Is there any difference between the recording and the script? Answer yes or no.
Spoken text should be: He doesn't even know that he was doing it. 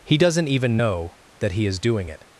yes